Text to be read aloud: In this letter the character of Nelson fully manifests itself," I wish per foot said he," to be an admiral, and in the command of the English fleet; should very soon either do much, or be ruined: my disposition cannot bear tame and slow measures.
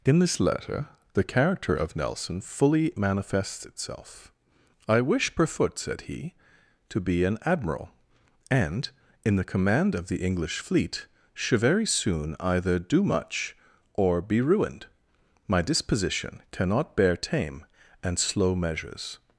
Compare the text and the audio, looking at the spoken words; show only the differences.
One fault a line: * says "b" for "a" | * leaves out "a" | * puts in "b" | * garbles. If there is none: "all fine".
all fine